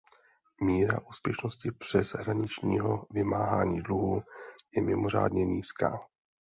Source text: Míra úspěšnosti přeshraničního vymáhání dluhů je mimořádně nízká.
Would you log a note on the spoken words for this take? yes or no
no